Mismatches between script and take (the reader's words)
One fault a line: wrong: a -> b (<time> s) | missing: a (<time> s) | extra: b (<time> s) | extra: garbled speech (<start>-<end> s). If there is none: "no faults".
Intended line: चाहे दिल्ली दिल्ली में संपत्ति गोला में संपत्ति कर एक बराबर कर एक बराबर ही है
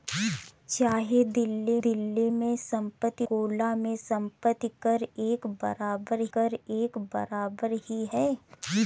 no faults